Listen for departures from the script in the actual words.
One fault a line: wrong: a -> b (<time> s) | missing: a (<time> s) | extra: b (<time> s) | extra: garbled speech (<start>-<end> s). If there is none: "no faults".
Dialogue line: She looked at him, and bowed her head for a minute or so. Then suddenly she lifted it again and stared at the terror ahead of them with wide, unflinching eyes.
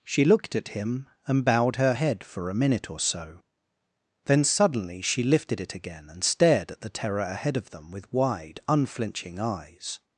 no faults